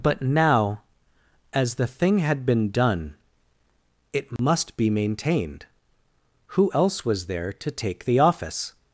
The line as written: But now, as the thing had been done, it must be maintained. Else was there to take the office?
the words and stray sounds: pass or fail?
fail